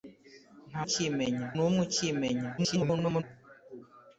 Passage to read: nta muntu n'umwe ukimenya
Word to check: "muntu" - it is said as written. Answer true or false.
false